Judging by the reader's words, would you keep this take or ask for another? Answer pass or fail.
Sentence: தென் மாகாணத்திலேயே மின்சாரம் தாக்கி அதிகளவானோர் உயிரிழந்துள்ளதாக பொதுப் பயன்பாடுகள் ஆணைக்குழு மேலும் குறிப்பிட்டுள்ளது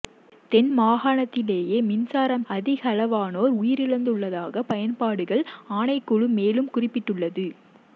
fail